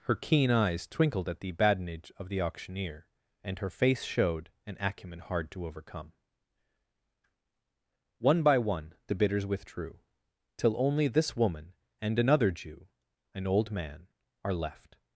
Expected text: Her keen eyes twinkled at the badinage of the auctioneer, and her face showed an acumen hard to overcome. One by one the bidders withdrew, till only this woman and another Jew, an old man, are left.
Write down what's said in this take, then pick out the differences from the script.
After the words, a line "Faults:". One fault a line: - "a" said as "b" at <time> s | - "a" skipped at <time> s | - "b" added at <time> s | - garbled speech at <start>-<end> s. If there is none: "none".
Her keen eyes twinkled at the badinage of the auctioneer, and her face showed an acumen hard to overcome. One by one the bidders withdrew, till only this woman and another Jew, an old man, are left.
Faults:
none